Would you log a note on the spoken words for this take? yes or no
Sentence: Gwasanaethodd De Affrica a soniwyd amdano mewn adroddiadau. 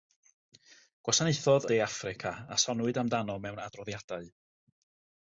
no